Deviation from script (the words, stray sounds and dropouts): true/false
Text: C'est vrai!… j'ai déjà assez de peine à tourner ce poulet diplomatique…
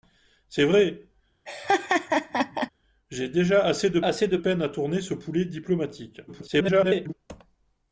true